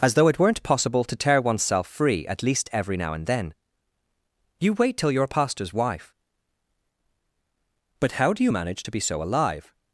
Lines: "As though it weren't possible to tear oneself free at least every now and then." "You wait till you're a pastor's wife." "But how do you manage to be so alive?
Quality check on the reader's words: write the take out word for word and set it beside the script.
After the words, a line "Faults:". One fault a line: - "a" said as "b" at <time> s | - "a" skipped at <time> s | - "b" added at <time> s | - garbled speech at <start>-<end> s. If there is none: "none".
"As though it weren't possible to tear oneself free at least every now and then." "You wait till you're a pastor's wife." "But how do you manage to be so alive?
Faults:
none